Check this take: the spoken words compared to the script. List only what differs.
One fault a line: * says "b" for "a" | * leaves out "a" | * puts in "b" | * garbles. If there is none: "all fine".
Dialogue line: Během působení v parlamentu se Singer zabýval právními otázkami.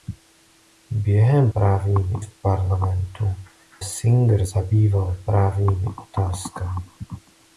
* says "právními" for "působení"
* leaves out "se"